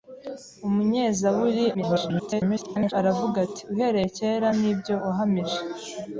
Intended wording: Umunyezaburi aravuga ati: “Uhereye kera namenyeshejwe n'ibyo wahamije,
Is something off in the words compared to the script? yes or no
yes